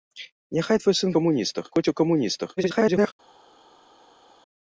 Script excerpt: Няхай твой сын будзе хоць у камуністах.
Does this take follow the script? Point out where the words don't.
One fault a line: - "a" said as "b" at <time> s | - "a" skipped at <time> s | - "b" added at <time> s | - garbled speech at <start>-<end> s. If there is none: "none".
- "будзе" said as "камуністах" at 1.2 s
- garbled speech at 2.6-3.1 s